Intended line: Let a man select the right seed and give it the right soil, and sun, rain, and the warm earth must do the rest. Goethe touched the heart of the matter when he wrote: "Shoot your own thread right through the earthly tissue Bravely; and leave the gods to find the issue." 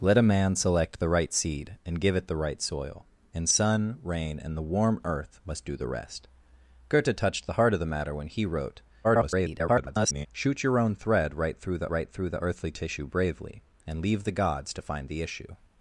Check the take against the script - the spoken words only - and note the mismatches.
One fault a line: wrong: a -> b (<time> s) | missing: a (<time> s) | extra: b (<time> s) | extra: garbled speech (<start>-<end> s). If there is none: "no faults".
extra: garbled speech (9.0-10.3 s)
extra: right through the (11.9 s)